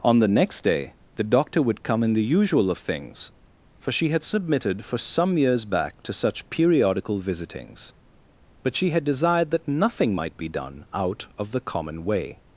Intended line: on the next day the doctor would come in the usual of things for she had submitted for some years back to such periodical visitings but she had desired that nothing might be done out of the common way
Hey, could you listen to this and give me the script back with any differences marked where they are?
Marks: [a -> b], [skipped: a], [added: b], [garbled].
on the next day the doctor would come in the usual of things for she had submitted for some years back to such periodical visitings but she had desired that nothing might be done out of the common way